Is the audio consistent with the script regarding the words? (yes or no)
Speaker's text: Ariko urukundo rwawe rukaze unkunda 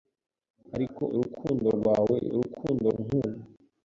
no